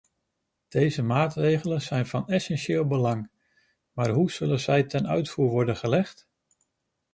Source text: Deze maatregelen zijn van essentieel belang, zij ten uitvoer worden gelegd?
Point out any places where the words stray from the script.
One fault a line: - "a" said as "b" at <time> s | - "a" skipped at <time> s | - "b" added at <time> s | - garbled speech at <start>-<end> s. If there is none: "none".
- "maar hoe zullen" added at 3.9 s